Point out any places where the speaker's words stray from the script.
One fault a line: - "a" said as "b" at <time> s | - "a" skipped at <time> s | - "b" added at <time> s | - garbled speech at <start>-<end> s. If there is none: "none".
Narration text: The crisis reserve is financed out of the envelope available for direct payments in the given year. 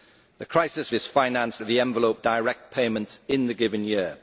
- "reserve" skipped at 0.9 s
- "out" skipped at 1.6 s
- "available for" skipped at 2.2 s